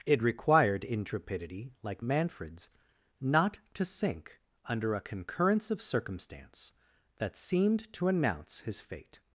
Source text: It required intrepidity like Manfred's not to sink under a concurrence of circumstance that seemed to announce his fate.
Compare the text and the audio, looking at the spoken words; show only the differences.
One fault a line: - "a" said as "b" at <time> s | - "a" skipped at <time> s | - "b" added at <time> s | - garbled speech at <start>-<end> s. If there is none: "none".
none